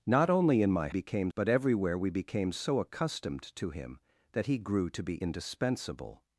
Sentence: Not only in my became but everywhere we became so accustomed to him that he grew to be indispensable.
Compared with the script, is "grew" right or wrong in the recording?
right